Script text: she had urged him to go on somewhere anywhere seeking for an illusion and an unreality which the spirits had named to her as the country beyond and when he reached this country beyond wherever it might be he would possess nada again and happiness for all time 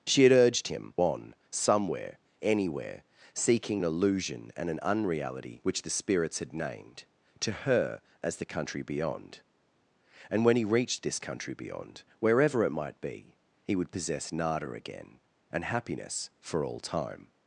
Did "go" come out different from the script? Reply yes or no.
yes